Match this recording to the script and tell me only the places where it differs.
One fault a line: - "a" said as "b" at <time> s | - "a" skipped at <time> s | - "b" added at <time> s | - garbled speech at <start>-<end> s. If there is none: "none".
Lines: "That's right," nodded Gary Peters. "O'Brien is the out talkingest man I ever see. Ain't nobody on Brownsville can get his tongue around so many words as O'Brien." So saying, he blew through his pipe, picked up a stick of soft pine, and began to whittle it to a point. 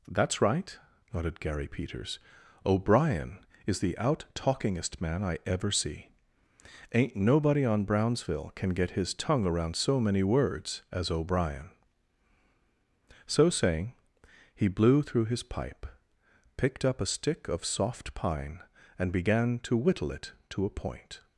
none